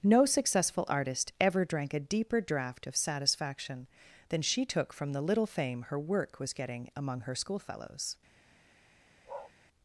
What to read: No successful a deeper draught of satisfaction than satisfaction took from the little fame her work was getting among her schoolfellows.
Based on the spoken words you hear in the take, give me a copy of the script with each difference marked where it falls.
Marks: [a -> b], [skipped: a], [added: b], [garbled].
No successful [added: artist ever drank] a deeper draught of satisfaction than [satisfaction -> she] took from the little fame her work was getting among her schoolfellows.